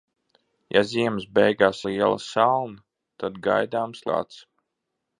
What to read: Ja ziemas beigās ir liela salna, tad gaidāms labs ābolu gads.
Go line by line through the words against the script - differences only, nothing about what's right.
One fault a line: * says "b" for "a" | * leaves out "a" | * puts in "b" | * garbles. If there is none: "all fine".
* leaves out "ir"
* leaves out "labs ābolu"